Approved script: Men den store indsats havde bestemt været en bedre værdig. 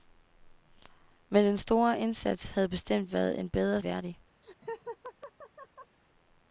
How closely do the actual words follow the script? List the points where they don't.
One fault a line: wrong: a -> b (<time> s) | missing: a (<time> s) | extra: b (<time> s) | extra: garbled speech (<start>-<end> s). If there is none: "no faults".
no faults